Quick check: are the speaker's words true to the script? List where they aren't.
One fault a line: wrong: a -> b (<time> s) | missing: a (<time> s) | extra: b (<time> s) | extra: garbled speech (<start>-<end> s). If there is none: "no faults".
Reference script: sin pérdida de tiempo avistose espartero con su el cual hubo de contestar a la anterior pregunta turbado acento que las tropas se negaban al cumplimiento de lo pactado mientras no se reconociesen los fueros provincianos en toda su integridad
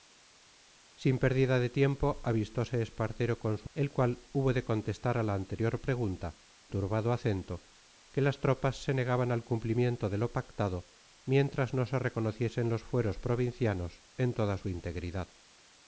no faults